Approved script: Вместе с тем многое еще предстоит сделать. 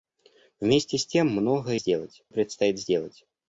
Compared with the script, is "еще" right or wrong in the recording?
wrong